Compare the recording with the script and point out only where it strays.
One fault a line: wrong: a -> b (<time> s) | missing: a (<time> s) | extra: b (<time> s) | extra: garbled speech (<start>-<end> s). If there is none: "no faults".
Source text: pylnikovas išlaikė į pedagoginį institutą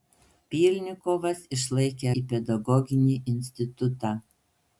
no faults